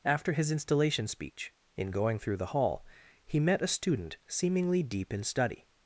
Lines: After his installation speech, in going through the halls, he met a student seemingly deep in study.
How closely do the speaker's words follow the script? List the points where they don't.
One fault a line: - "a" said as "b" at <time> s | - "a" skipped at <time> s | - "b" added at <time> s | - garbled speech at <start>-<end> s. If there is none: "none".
- "halls" said as "hall" at 2.5 s